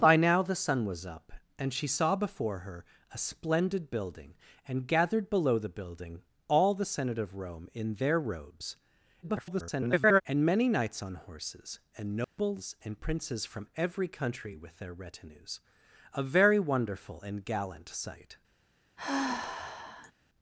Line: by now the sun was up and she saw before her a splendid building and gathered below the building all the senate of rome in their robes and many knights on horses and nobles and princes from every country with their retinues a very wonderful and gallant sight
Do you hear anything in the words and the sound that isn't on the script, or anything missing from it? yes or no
yes